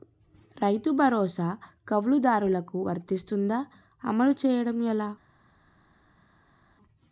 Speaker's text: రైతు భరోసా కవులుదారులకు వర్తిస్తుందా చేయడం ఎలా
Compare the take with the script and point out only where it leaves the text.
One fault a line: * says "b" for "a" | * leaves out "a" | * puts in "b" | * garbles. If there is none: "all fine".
* puts in "అమలు"